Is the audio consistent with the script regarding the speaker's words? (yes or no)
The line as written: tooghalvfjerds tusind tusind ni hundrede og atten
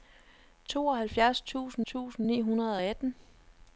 yes